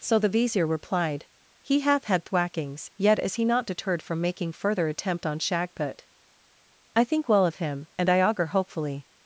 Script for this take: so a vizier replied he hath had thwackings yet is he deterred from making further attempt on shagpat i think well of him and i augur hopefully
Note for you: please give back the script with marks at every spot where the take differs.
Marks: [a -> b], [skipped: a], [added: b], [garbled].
so [a -> the] vizier replied he hath had thwackings yet is he [added: not] deterred from making further attempt on shagpat i think well of him and i augur hopefully